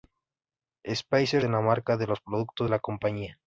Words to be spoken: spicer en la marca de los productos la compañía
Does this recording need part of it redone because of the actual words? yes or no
no